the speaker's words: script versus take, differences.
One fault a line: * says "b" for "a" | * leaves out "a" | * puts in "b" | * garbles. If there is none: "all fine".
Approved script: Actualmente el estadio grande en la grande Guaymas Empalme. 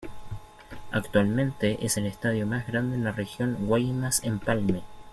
* puts in "es"
* puts in "más"
* says "región" for "grande"